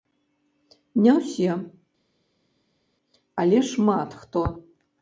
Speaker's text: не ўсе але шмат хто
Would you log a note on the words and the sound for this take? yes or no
no